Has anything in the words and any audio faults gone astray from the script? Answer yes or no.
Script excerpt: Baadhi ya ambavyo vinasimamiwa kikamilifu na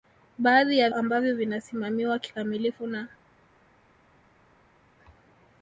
no